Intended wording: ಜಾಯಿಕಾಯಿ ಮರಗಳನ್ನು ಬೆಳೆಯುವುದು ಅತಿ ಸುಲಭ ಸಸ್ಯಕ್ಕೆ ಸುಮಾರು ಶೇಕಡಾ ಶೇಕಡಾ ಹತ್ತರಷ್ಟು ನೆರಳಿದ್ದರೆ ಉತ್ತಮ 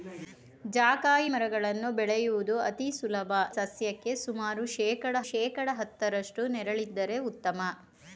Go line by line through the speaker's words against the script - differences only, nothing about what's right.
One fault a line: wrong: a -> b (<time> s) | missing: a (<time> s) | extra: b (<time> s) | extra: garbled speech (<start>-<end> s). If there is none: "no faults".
no faults